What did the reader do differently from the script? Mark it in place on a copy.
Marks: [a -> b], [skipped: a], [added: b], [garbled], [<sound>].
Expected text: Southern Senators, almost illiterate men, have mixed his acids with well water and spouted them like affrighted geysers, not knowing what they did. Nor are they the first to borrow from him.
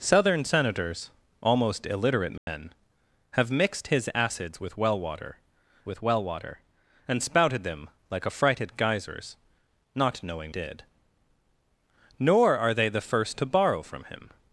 Southern Senators, almost illiterate men, [dropout] have mixed his acids with well water [added: with well water] and spouted them like affrighted geysers, not knowing [skipped: what they] did. Nor are they the first to borrow from him.